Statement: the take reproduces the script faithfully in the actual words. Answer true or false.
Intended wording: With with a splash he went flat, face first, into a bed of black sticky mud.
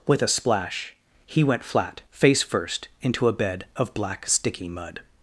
false